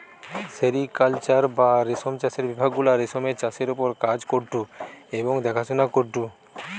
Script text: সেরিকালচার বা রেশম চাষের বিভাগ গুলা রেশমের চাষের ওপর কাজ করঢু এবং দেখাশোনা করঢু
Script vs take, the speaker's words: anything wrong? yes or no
no